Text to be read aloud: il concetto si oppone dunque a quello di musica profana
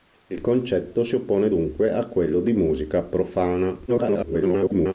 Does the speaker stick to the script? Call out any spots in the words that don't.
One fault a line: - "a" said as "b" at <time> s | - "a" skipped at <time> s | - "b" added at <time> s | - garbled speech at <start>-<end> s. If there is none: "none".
- garbled speech at 3.9-4.9 s